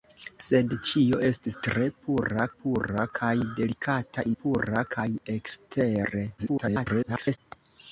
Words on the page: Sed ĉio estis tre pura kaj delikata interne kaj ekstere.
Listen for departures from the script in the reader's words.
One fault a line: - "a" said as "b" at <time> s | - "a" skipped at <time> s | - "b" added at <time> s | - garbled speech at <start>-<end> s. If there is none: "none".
- "pura" added at 2.6 s
- "interne" said as "pura" at 4.4 s
- garbled speech at 6.4-7.4 s